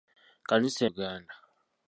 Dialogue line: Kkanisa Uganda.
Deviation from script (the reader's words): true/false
false